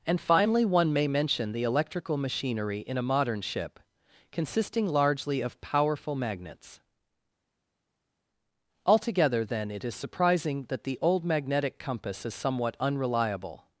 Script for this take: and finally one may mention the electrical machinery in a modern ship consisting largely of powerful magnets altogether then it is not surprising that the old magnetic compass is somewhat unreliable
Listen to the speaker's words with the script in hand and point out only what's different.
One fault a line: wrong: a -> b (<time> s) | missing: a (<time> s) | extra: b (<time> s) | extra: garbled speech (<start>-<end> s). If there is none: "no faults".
missing: not (10.0 s)